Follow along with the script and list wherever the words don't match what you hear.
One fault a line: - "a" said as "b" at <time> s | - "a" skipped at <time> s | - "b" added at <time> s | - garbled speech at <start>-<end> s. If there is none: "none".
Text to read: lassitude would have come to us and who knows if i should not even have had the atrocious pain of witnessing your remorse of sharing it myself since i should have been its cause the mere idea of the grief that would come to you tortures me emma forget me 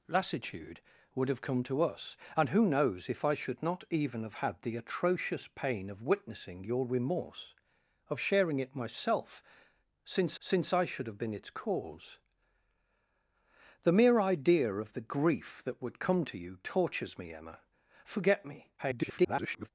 - "since" added at 10.4 s
- garbled speech at 18.8-19.7 s